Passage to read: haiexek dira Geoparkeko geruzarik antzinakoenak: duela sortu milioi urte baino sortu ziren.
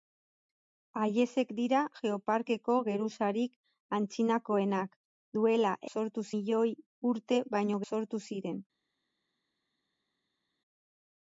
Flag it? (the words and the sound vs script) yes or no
no